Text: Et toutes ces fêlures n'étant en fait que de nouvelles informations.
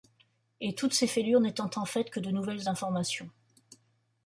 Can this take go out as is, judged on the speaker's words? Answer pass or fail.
pass